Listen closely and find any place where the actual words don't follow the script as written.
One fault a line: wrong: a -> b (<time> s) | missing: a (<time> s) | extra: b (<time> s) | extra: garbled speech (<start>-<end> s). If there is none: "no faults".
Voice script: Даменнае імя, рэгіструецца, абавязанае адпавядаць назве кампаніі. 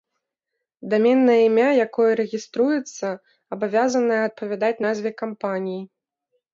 extra: якое (1.9 s)